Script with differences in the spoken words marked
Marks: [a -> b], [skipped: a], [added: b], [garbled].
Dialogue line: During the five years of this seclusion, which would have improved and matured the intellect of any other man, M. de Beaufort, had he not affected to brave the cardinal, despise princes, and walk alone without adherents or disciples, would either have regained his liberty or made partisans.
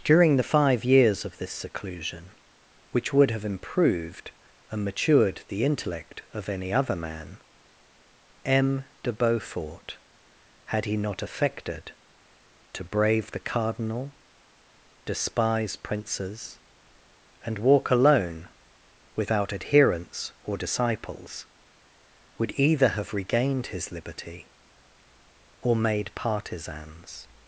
During the five years of this seclusion, which would have improved and matured the intellect of any other man, M. de Beaufort, had he not affected to brave the cardinal, despise princes, and walk alone without adherents or disciples, would either have regained his liberty or made partisans.